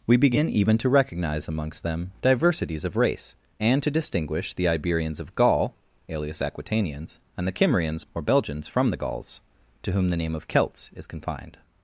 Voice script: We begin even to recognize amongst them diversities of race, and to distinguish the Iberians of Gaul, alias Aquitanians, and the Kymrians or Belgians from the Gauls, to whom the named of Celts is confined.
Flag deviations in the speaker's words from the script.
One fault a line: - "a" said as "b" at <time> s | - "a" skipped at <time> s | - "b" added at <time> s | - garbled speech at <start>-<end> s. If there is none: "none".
- "named" said as "name" at 10.2 s